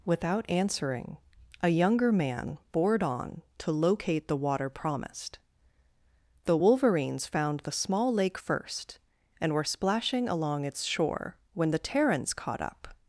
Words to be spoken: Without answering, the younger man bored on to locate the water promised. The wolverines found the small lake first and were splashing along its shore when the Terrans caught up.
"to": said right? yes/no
yes